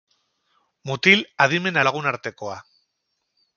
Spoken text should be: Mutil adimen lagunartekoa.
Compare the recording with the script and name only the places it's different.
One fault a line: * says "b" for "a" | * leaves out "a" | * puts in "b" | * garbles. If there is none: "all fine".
all fine